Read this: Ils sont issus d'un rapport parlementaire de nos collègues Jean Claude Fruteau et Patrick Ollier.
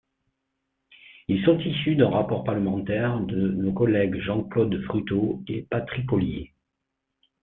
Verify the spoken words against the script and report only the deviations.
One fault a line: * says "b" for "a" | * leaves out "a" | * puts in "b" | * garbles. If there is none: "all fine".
all fine